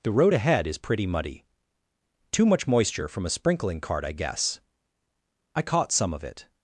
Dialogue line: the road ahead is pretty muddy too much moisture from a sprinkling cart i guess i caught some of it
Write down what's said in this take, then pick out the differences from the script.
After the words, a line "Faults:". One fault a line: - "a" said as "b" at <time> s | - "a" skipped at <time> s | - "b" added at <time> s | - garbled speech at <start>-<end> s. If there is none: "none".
the road ahead is pretty muddy too much moisture from a sprinkling cart i guess i caught some of it
Faults:
none